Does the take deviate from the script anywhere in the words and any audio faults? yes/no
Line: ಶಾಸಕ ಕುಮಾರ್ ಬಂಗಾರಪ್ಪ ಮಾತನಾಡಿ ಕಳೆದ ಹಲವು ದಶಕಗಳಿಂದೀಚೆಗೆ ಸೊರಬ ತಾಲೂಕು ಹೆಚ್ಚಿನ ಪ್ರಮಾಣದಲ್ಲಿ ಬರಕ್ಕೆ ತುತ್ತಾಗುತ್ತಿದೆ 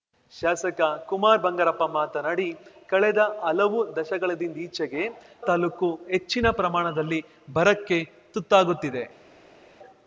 yes